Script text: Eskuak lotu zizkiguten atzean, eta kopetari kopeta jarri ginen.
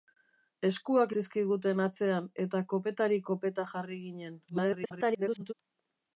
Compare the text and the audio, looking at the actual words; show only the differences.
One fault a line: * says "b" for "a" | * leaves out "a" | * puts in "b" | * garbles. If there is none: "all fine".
* leaves out "lotu"
* garbles